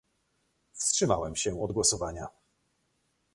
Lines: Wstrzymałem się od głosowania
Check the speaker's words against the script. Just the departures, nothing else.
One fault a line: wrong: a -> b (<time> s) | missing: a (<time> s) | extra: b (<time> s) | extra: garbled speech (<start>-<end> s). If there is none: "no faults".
no faults